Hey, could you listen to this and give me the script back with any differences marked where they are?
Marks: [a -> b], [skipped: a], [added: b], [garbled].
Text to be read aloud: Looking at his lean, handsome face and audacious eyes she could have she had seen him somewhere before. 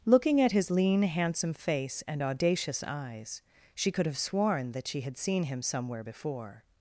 Looking at his lean, handsome face and audacious eyes she could have [added: sworn that] she had seen him somewhere before.